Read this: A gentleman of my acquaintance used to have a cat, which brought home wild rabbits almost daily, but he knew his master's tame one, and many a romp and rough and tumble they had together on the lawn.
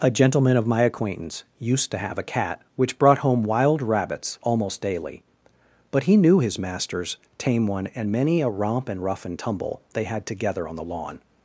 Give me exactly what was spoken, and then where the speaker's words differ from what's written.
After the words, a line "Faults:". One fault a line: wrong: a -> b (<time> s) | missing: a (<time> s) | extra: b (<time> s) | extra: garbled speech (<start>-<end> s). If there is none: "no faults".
A gentleman of my acquaintance used to have a cat, which brought home wild rabbits almost daily, but he knew his master's tame one, and many a romp and rough and tumble they had together on the lawn.
Faults:
no faults